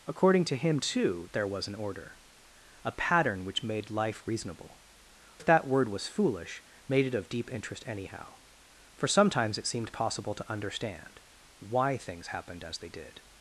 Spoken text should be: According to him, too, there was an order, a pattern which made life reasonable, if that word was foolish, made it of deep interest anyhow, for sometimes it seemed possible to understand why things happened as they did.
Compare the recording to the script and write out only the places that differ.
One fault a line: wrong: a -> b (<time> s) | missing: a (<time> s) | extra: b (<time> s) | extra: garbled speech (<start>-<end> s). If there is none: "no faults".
no faults